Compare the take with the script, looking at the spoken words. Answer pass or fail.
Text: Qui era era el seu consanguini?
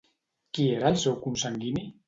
fail